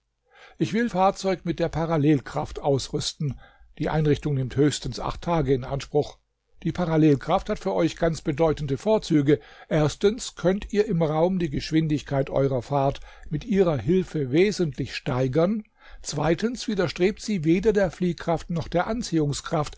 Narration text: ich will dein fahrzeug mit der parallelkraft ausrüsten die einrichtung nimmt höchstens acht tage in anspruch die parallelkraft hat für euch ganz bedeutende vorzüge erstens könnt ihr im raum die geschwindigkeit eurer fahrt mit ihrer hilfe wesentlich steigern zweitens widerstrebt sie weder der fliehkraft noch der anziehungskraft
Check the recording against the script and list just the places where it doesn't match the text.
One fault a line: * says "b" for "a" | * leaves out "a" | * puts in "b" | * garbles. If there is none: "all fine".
* leaves out "dein"